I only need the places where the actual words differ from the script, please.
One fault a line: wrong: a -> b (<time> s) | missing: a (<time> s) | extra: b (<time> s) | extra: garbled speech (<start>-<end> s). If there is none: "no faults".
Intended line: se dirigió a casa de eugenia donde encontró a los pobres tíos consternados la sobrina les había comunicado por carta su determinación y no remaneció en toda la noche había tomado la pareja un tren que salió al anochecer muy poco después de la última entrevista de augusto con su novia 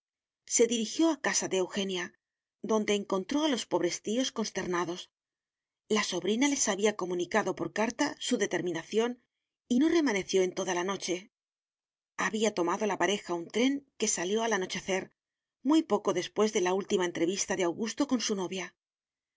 no faults